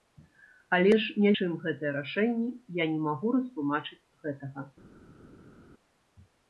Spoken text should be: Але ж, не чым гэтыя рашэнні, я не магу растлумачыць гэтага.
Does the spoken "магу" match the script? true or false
true